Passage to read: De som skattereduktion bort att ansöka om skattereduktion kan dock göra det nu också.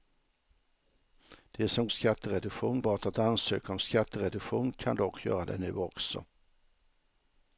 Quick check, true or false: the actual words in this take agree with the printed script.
true